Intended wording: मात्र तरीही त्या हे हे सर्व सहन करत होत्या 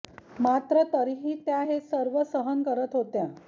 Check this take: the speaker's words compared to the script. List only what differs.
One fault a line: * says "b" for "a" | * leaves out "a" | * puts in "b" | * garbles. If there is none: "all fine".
* leaves out "हे"